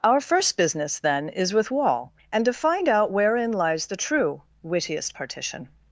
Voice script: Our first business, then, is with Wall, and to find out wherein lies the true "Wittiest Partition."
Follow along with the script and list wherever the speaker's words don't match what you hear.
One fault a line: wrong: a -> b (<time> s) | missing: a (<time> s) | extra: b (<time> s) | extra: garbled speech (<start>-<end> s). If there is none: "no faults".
no faults